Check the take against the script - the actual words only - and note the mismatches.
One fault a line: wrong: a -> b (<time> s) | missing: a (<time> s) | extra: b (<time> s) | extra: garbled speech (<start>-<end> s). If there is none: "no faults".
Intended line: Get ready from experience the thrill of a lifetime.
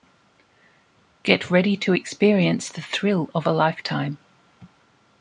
wrong: from -> to (1.8 s)